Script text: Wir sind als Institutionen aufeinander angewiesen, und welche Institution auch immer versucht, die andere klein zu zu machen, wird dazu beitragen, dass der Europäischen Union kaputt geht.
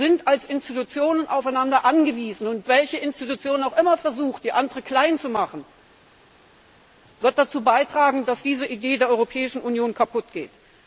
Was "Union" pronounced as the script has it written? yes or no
yes